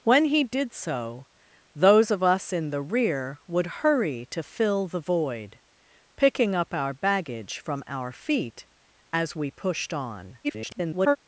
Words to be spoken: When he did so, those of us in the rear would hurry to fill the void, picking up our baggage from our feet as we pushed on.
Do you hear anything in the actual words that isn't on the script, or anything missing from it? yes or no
yes